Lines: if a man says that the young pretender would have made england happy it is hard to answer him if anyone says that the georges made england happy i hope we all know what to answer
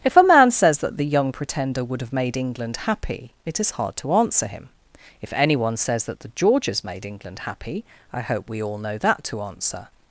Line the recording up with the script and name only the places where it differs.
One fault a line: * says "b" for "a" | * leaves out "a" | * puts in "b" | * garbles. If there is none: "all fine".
* says "that" for "what"